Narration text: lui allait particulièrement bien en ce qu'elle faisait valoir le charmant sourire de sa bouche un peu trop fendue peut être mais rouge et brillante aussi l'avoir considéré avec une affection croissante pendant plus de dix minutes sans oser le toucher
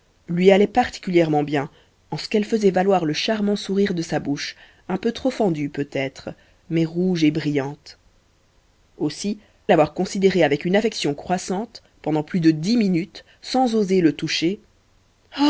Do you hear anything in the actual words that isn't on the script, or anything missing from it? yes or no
no